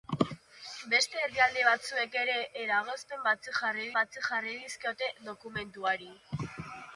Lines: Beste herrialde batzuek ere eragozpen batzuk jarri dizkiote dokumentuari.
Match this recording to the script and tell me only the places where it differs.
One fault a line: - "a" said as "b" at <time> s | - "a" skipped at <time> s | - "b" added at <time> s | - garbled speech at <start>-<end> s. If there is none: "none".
- "batzuk jarri" added at 4.0 s